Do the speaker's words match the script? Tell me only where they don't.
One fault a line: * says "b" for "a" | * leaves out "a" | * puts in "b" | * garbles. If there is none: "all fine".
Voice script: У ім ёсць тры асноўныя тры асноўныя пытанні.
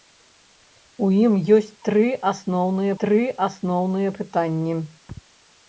all fine